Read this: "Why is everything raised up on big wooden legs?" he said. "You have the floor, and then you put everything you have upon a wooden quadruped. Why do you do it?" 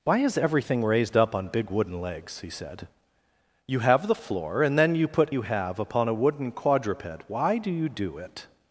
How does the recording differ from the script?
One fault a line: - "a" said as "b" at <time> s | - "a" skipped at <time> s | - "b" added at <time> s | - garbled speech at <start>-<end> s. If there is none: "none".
- "everything" skipped at 5.3 s